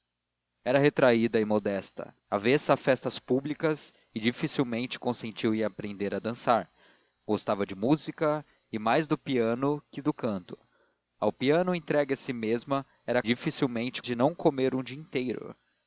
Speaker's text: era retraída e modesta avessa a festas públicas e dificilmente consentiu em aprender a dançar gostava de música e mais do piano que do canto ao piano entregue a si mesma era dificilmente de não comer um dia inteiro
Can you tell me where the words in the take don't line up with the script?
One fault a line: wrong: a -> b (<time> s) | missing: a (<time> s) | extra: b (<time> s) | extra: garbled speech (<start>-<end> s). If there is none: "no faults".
no faults